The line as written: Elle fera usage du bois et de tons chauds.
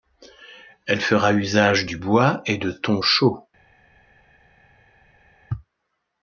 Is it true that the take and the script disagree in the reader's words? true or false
false